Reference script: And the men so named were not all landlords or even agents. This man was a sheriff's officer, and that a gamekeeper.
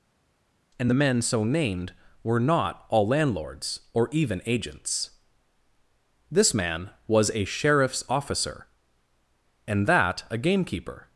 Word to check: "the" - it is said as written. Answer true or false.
true